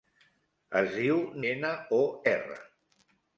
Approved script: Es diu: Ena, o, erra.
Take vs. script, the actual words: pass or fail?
pass